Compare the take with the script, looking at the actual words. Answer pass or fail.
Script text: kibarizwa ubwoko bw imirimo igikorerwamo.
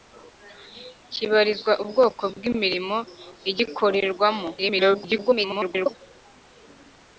fail